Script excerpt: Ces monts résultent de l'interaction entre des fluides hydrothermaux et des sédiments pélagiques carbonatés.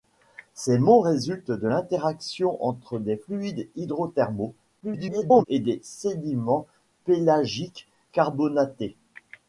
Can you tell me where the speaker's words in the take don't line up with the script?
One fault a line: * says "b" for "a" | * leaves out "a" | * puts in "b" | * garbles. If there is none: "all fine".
* garbles